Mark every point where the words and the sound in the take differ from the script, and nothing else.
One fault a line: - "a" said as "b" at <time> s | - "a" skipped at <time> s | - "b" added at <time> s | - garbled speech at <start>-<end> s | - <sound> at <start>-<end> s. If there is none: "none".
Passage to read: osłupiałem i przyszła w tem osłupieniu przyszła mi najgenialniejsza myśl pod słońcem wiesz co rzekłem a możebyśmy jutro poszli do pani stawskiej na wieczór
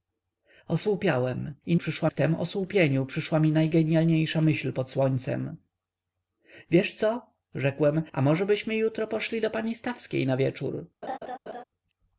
- laugh at 11.0-11.6 s